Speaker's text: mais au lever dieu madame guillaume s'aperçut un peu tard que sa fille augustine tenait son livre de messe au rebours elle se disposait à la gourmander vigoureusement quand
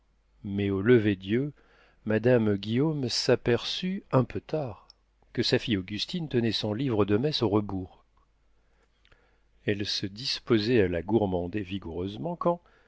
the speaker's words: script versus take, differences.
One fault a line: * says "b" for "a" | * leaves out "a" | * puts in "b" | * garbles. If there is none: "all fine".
all fine